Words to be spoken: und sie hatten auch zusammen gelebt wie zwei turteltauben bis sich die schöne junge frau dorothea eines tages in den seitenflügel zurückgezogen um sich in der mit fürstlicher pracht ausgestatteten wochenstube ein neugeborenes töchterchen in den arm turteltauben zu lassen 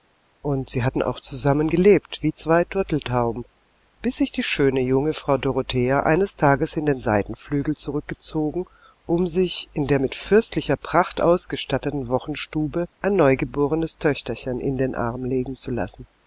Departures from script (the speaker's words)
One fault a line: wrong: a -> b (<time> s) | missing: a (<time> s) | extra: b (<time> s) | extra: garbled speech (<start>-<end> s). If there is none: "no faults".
wrong: turteltauben -> legen (15.2 s)